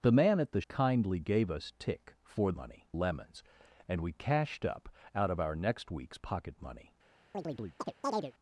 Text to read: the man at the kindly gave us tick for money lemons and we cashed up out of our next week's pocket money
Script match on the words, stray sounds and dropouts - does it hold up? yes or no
no